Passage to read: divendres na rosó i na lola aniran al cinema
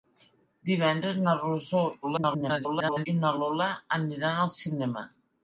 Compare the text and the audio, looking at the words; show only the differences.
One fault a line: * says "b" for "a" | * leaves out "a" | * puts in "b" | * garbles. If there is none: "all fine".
* garbles